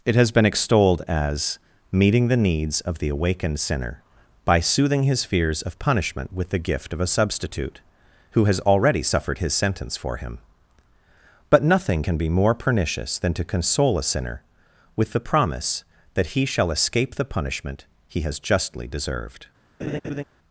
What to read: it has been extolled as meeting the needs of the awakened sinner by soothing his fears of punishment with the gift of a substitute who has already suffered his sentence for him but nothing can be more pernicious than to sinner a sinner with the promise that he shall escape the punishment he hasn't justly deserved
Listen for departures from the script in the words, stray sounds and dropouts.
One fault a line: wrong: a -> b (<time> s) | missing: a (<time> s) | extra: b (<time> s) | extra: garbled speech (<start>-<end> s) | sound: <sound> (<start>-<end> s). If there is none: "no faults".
wrong: sinner -> console (13.5 s)
wrong: hasn't -> has (18.2 s)
sound: laugh (19.8-20.2 s)